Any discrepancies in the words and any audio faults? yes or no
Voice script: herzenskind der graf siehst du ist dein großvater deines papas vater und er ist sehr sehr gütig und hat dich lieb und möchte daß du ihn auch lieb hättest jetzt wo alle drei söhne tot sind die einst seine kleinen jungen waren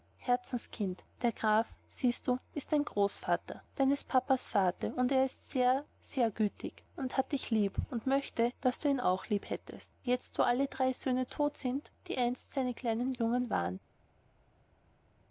no